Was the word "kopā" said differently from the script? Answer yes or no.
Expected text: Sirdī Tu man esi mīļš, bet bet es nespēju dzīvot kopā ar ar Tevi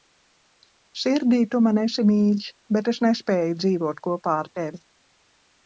no